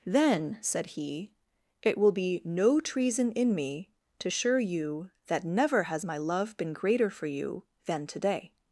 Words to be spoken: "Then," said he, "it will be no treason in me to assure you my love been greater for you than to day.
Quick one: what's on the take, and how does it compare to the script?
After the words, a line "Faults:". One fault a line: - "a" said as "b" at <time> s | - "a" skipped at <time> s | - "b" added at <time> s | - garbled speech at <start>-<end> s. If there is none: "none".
"Then," said he, "it will be no treason in me to assure you that never has my love been greater for you than to day.
Faults:
- "that never has" added at 5.3 s